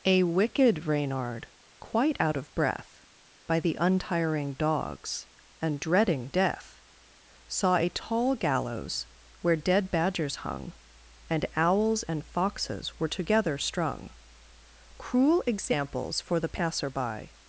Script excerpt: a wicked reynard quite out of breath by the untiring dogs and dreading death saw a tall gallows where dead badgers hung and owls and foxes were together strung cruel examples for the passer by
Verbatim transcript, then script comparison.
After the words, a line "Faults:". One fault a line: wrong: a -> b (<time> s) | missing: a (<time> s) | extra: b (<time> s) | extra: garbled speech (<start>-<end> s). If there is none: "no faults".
a wicked reynard quite out of breath by the untiring dogs and dreading death saw a tall gallows where dead badgers hung and owls and foxes were together strung cruel examples for the passer by
Faults:
no faults